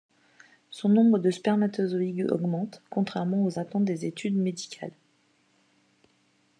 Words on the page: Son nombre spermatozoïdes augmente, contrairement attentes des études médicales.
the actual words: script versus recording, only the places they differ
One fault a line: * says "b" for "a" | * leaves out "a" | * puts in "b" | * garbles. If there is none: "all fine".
* puts in "de"
* puts in "aux"